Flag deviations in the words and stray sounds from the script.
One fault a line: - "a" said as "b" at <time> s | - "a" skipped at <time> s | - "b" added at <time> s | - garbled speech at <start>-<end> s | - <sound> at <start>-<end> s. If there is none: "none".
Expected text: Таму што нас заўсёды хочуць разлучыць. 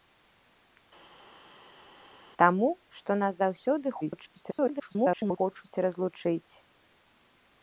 - garbled speech at 4.0-5.4 s